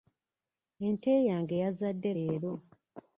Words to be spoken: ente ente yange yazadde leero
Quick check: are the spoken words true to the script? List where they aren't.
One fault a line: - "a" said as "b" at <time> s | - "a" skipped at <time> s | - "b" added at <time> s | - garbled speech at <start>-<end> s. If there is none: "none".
- "ente" skipped at 1.1 s